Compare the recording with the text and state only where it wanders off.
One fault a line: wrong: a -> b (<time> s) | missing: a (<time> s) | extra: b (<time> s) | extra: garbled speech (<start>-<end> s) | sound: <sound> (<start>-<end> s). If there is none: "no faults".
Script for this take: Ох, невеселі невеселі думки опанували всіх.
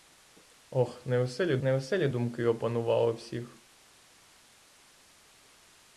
no faults